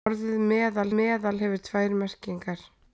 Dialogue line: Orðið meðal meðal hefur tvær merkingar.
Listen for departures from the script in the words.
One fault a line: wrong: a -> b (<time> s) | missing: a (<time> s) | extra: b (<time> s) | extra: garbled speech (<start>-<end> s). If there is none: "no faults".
no faults